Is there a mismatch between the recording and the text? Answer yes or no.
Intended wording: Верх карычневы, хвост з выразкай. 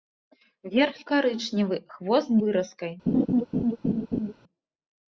no